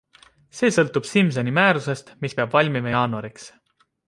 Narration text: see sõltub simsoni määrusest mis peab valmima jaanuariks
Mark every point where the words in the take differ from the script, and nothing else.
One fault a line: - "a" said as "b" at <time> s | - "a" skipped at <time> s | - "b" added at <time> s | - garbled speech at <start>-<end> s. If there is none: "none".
none